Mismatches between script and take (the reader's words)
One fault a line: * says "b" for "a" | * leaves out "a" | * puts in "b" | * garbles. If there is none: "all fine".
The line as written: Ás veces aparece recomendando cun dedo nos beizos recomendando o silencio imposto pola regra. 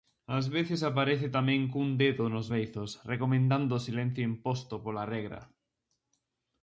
* says "tamén" for "recomendando"